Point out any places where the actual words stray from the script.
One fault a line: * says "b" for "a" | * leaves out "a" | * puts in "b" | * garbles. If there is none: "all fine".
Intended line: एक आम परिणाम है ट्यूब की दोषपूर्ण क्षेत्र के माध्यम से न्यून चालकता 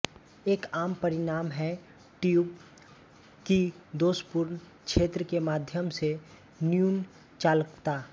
all fine